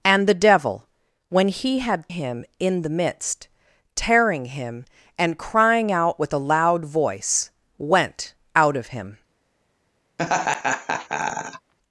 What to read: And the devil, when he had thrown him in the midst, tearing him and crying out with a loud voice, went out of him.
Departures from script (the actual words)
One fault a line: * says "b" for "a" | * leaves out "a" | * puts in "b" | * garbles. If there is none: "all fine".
* leaves out "thrown"